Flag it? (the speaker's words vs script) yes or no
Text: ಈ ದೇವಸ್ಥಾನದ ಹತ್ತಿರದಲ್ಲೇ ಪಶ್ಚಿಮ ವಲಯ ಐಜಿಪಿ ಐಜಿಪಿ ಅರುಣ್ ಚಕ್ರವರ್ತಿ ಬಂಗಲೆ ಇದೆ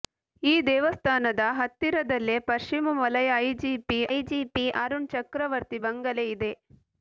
no